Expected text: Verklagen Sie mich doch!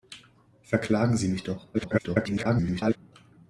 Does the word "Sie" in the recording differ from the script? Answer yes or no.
no